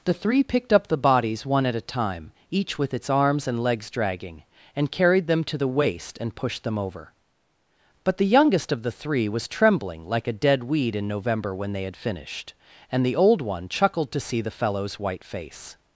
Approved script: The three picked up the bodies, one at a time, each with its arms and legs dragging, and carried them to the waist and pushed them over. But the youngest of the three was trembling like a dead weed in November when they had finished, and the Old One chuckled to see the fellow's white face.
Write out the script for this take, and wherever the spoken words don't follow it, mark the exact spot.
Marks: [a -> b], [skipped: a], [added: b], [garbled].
The three picked up the bodies, one at a time, each with its arms and legs dragging, and carried them to the waist and pushed them over. But the youngest of the three was trembling like a dead weed in November when they had finished, and the Old One chuckled to see the fellow's white face.